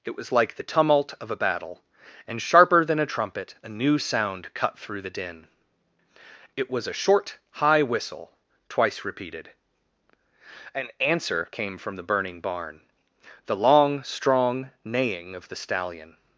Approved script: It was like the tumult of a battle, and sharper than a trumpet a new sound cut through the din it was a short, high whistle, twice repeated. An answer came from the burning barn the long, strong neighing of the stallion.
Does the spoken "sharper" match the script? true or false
true